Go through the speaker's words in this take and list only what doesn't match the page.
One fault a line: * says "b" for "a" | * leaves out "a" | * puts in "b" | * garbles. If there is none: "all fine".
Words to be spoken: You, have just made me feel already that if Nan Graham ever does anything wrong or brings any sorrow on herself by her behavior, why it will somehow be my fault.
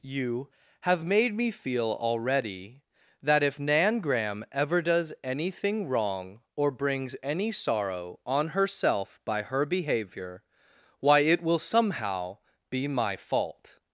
* leaves out "just"